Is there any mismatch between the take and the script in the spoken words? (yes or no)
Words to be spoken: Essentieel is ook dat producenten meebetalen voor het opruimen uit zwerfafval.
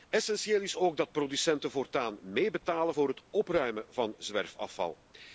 yes